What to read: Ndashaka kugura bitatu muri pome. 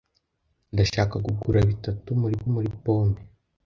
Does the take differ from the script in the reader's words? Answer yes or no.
yes